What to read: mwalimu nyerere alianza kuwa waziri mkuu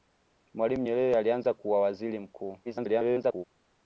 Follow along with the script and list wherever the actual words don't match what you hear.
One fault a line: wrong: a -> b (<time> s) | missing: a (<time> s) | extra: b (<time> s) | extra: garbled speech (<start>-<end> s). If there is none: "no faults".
extra: garbled speech (2.6-3.4 s)